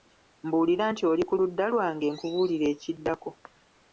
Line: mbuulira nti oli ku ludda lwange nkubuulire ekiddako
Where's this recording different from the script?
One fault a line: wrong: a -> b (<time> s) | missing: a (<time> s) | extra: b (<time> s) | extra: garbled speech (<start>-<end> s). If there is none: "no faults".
no faults